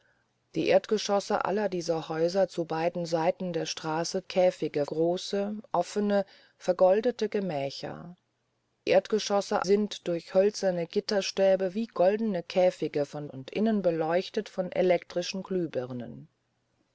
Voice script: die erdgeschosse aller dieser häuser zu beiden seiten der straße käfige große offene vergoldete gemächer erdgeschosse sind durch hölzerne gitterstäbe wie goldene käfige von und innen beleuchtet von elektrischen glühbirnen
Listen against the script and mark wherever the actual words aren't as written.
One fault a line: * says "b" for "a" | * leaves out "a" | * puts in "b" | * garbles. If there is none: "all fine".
all fine